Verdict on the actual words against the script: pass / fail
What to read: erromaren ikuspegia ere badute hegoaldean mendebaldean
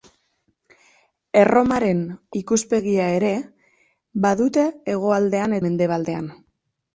pass